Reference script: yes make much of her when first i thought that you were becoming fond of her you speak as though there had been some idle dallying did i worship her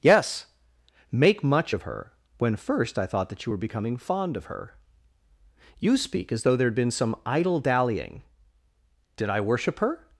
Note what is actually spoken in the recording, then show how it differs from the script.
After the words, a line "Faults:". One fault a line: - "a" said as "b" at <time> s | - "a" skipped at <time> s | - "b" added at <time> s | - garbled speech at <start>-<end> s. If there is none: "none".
yes make much of her when first i thought that you were becoming fond of her you speak as though there had been some idle dallying did i worship her
Faults:
none